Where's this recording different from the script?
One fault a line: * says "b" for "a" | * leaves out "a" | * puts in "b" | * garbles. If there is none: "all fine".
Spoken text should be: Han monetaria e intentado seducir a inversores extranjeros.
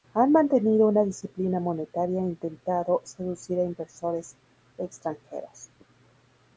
* puts in "mantenido una disciplina"